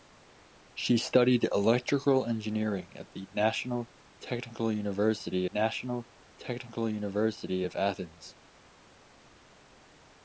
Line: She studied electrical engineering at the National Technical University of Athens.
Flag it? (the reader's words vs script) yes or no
yes